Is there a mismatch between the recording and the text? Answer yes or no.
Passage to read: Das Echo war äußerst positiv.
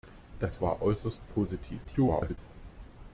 yes